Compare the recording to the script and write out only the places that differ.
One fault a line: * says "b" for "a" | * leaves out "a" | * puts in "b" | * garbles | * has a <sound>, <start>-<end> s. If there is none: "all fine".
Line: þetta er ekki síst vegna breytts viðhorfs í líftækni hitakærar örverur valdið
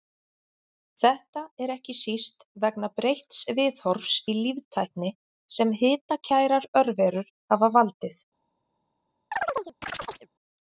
* puts in "sem"
* puts in "hafa"
* has a chirp, 9.3-10.3 s